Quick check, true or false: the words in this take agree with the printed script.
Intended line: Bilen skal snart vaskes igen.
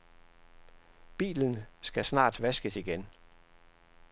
true